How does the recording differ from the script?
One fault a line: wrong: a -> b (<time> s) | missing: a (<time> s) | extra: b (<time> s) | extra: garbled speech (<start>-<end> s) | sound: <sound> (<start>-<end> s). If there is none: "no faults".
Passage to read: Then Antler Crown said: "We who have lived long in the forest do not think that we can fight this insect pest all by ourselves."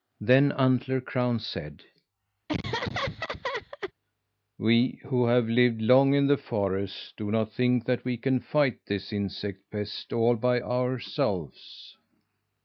sound: laugh (2.5-3.9 s)